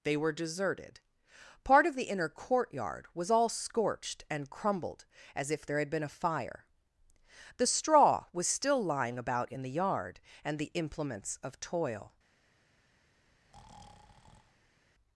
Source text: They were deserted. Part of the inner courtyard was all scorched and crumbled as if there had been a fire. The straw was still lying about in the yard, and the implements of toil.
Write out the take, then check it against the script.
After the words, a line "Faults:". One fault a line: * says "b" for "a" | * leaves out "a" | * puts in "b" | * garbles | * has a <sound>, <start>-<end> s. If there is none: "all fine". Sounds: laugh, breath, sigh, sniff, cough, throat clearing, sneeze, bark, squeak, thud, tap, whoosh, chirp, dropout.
They were deserted. Part of the inner courtyard was all scorched and crumbled as if there had been a fire. The straw was still lying about in the yard, and the implements of toil.
Faults:
* has a breath, 13.2-14.8 s